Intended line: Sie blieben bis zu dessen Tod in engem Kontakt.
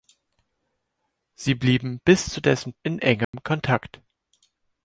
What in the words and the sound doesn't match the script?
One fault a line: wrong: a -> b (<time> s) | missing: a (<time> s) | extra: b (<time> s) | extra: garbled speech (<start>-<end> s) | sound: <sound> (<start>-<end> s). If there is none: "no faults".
missing: Tod (2.7 s)
sound: dropout (3.2-3.3 s)